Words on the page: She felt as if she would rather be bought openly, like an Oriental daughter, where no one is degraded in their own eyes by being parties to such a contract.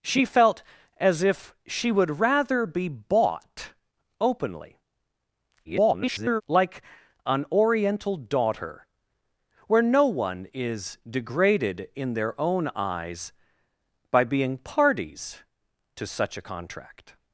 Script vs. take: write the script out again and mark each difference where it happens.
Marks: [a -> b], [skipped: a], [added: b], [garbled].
She felt as if she would rather be bought openly, [garbled] like an Oriental daughter, where no one is degraded in their own eyes by being parties to such a contract.